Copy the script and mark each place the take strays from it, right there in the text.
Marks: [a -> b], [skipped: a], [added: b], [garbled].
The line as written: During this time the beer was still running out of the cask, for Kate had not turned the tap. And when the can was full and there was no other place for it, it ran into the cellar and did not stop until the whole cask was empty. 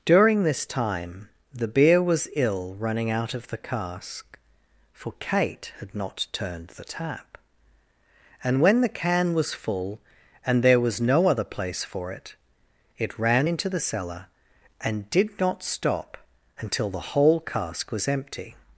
During this time the beer was [still -> ill] running out of the cask, for Kate had not turned the tap. And when the can was full and there was no other place for it, it ran into the cellar and did not stop until the whole cask was empty.